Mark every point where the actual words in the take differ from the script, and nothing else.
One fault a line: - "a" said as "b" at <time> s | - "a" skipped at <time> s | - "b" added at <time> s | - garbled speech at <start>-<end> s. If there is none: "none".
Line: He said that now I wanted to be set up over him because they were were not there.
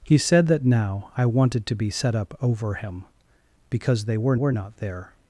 none